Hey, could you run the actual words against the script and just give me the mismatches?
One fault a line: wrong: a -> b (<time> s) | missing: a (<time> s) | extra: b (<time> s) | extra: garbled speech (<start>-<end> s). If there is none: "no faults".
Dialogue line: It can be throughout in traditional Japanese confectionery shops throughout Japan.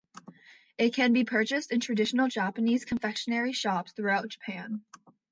wrong: throughout -> purchased (1.2 s)